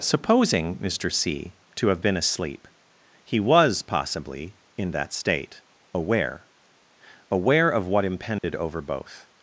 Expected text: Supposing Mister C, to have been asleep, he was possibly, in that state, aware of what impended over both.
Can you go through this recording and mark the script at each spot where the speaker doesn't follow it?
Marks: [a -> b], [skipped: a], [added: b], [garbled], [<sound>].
Supposing Mister C, to have been asleep, he was possibly, in that state, aware [added: aware] of what impended [dropout] over both.